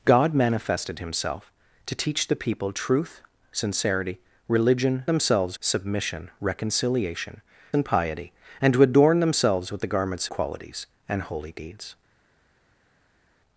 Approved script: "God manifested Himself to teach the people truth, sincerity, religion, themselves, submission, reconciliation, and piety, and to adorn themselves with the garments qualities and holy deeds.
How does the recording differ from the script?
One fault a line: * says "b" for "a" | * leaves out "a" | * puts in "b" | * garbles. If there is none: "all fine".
all fine